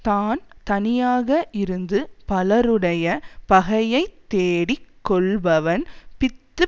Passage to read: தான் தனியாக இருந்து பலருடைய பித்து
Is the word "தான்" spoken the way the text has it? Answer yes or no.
yes